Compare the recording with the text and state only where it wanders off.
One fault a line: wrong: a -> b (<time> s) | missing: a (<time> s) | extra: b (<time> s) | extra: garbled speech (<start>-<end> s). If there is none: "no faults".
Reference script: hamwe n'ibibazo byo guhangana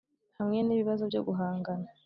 no faults